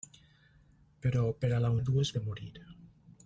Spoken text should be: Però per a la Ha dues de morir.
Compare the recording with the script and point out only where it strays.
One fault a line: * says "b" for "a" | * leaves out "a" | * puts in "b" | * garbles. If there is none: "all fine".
all fine